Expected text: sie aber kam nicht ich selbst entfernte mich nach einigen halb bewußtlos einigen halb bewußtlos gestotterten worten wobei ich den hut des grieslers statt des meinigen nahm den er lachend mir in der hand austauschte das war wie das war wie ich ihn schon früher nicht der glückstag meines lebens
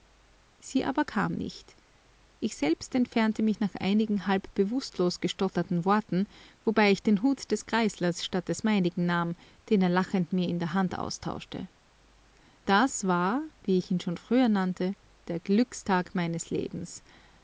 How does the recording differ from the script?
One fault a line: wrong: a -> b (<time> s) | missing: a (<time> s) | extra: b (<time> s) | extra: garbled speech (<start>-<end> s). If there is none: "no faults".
missing: einigen halb bewußtlos (5.2 s)
missing: das war wie (13.8 s)
wrong: nicht -> nannte (14.5 s)